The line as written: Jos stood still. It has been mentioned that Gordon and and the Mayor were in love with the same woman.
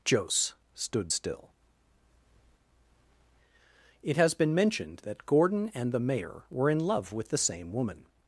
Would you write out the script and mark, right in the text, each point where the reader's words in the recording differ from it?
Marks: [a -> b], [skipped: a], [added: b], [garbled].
Jos stood still. It has been mentioned that Gordon and [skipped: and] the Mayor were in love with the same woman.